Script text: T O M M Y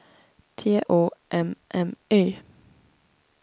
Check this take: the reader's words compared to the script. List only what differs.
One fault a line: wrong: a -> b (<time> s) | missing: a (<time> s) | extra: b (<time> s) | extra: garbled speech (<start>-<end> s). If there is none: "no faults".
no faults